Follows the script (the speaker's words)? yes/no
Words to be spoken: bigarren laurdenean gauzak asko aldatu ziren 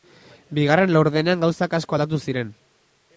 yes